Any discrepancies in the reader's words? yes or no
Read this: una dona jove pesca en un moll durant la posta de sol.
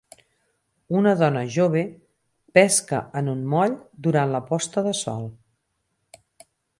no